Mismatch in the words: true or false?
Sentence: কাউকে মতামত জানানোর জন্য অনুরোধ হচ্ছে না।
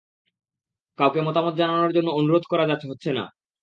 true